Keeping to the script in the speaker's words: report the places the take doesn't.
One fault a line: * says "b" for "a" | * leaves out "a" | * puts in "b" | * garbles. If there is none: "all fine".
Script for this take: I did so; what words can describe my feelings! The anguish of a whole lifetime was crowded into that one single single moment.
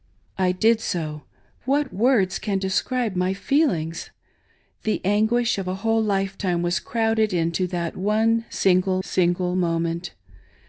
all fine